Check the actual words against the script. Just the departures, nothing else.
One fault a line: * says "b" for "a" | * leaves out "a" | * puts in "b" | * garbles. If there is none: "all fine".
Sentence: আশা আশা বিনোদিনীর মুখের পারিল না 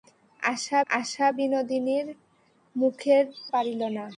all fine